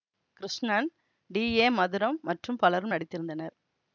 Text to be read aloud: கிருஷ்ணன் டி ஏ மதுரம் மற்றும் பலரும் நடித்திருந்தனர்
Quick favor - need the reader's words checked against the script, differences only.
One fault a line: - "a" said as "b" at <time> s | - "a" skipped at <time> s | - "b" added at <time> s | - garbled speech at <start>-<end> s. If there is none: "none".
none